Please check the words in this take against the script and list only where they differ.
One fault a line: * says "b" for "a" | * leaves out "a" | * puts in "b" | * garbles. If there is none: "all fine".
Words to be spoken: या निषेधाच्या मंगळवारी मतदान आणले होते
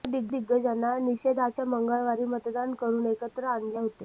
* puts in "दिग्गजांना"
* puts in "करून एकत्र"